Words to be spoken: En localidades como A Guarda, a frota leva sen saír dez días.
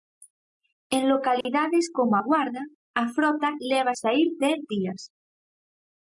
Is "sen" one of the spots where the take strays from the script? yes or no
yes